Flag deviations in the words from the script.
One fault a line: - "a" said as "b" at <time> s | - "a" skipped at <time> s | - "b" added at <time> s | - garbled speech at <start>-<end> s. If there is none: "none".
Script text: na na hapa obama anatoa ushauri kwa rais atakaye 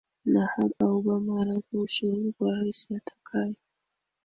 - "na" skipped at 0.5 s